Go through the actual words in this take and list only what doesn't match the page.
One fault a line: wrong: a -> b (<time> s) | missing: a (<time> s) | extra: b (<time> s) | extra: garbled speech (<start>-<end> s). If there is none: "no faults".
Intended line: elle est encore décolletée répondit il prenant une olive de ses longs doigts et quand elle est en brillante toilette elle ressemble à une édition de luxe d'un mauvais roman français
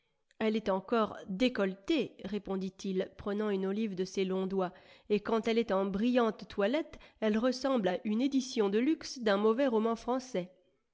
no faults